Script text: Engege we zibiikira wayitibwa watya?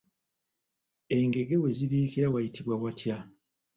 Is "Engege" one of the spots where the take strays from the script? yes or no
no